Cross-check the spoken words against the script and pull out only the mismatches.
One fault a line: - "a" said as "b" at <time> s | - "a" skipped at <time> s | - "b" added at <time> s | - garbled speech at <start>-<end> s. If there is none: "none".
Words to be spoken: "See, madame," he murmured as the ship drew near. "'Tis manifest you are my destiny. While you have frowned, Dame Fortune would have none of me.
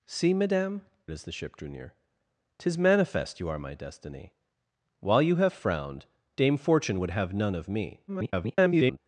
- "he murmured" skipped at 0.9 s
- garbled speech at 8.1-9.0 s